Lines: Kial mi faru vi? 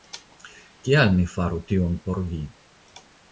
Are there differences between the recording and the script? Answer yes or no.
yes